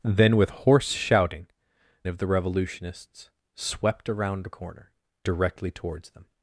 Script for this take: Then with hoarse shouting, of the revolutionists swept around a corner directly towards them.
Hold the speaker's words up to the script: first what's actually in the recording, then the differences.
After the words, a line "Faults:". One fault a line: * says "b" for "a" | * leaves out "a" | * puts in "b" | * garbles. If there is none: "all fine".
Then with hoarse shouting, of the revolutionists swept around a corner directly towards them.
Faults:
all fine